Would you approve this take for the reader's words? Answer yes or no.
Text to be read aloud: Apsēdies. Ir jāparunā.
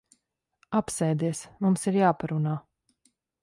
no